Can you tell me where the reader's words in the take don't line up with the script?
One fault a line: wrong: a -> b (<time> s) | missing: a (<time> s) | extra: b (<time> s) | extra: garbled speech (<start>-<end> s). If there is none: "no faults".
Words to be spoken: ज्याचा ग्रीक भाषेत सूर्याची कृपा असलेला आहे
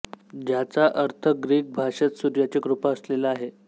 extra: अर्थ (0.9 s)